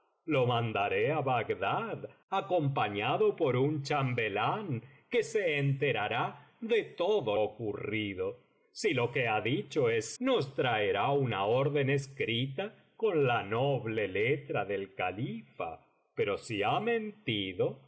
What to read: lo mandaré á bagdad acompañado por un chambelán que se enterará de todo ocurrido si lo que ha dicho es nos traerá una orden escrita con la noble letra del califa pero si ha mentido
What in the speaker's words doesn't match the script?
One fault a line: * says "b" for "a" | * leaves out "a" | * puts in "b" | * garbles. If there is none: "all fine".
all fine